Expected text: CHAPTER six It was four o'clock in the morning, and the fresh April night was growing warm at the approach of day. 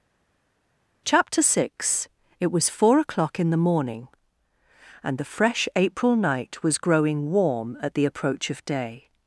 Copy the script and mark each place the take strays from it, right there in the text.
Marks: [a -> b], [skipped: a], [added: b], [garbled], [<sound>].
CHAPTER six It was four o'clock in the morning, and the fresh April night was growing warm at the approach of day.